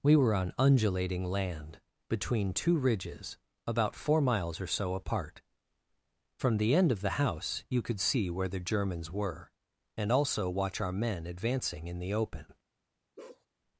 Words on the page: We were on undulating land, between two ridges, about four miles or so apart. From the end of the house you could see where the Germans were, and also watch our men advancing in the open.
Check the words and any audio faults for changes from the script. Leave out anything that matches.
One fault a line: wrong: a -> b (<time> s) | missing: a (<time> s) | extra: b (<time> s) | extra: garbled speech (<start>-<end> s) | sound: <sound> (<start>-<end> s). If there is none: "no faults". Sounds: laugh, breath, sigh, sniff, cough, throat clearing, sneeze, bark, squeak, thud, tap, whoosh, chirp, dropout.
sound: bark (13.2-13.5 s)